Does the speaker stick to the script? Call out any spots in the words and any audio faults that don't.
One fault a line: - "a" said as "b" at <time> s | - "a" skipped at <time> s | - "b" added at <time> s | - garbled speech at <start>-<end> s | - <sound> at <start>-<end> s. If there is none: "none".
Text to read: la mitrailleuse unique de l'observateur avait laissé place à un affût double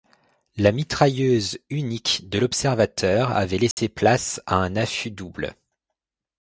- dropout at 3.7-3.8 s